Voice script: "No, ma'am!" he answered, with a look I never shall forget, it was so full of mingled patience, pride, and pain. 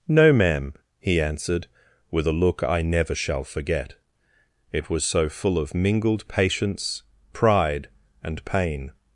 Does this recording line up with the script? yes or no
yes